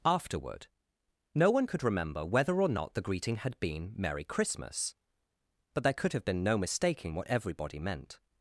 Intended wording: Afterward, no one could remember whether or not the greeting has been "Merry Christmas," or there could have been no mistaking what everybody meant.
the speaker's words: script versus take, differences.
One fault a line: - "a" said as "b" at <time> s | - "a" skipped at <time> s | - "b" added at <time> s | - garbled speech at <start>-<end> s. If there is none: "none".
- "has" said as "had" at 3.4 s
- "or" said as "but" at 5.7 s